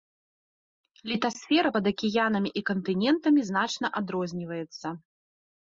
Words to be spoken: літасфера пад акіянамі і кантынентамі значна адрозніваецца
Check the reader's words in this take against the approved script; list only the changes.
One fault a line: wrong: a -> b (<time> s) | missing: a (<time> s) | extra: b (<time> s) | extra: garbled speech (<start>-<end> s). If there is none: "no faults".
no faults